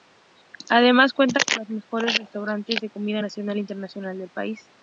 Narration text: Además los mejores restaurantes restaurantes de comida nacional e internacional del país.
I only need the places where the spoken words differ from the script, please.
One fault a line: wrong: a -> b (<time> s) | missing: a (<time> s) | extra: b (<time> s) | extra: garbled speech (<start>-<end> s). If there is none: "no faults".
extra: cuenta con (1.1 s)
missing: restaurantes (2.8 s)